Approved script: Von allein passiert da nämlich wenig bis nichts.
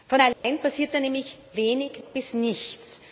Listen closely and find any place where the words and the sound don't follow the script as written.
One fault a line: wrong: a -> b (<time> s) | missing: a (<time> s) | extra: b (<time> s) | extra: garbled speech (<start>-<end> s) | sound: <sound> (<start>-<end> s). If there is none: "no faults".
sound: dropout (0.3-0.4 s)